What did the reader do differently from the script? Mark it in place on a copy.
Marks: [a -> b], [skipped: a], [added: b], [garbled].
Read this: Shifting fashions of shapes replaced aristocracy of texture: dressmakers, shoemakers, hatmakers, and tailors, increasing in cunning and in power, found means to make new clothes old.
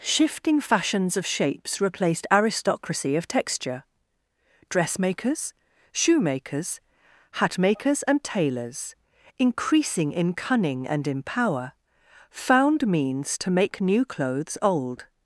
Shifting fashions of shapes replaced aristocracy of texture: dressmakers, shoemakers, hatmakers, and tailors, increasing in cunning and in power, found means to make new clothes old.